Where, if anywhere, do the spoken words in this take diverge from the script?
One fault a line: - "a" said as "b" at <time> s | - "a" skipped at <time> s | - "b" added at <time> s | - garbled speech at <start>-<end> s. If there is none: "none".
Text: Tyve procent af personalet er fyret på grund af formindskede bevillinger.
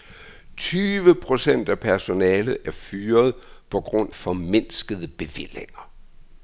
- "af" skipped at 4.1 s